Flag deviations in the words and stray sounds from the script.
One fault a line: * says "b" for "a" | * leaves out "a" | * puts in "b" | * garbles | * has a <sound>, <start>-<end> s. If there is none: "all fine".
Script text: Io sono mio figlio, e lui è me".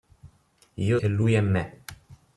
* leaves out "sono mio figlio"